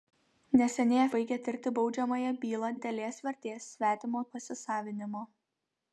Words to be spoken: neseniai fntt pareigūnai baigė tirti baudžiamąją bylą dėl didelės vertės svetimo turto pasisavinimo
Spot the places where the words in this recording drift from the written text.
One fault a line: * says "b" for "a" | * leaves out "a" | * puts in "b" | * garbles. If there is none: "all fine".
* leaves out "fntt pareigūnai"
* leaves out "dėl"
* leaves out "turto"